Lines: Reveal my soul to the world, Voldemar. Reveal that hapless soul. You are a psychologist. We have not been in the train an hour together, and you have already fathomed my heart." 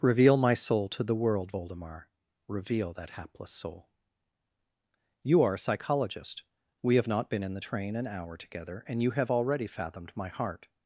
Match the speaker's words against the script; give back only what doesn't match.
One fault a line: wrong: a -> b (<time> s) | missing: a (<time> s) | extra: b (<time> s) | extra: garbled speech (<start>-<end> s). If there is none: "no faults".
no faults